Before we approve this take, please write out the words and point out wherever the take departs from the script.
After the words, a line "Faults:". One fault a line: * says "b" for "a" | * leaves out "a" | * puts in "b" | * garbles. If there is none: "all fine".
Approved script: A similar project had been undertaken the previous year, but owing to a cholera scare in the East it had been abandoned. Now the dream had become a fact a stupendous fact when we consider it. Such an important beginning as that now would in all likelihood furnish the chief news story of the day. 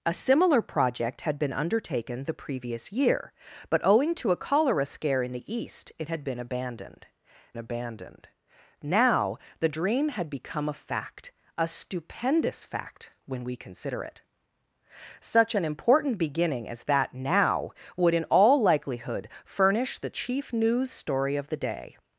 A similar project had been undertaken the previous year, but owing to a cholera scare in the East it had been abandoned abandoned. Now the dream had become a fact a stupendous fact when we consider it. Such an important beginning as that now would in all likelihood furnish the chief news story of the day.
Faults:
* puts in "abandoned"